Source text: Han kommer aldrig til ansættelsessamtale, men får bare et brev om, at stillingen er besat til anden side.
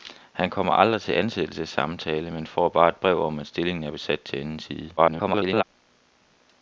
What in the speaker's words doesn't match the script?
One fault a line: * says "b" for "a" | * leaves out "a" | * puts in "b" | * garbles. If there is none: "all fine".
* garbles